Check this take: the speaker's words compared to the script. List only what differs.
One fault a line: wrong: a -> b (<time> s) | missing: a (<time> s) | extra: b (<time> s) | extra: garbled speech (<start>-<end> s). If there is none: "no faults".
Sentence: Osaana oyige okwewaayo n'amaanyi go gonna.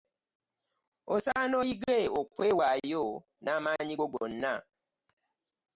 no faults